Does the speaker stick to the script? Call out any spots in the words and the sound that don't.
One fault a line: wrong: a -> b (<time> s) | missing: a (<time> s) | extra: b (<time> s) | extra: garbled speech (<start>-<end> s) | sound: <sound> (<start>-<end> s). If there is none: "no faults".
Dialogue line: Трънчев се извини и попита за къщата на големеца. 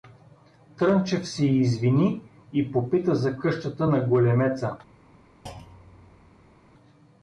sound: thud (5.5-6.6 s)